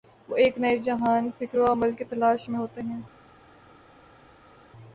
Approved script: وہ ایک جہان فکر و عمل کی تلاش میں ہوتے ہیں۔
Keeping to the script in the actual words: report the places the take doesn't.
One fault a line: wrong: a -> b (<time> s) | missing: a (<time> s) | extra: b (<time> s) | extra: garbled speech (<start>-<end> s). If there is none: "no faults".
extra: نئے (0.6 s)